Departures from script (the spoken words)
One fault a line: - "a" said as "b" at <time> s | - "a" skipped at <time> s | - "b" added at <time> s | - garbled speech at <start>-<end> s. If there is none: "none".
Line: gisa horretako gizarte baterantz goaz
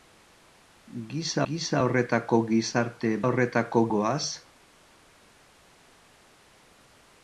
- "gisa" added at 1.5 s
- "baterantz" said as "horretako" at 3.3 s